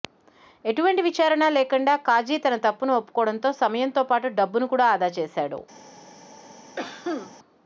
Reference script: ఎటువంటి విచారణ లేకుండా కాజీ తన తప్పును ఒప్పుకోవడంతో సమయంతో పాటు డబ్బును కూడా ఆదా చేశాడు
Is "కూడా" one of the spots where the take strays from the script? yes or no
no